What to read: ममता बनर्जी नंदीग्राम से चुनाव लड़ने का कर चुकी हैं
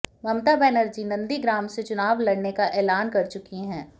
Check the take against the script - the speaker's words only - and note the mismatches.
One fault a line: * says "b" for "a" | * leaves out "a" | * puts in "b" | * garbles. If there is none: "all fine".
* puts in "ऐलान"